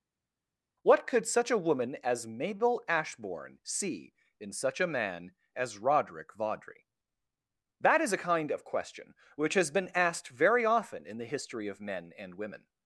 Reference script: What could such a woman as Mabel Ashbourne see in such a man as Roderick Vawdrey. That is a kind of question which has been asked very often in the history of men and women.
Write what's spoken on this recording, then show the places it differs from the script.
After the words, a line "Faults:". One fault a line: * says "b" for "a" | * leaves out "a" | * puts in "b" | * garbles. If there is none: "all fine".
What could such a woman as Mabel Ashbourne see in such a man as Roderick Vawdrey. That is a kind of question which has been asked very often in the history of men and women.
Faults:
all fine